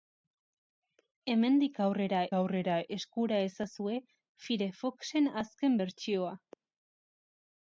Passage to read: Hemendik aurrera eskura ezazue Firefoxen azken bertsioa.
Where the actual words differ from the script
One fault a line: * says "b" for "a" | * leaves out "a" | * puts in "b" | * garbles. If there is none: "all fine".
* puts in "aurrera"